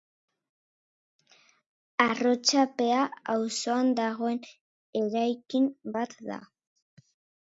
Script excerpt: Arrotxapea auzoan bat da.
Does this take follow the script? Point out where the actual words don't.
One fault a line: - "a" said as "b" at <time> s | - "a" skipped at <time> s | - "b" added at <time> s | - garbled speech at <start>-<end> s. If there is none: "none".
- "dagoen eraikin" added at 4.0 s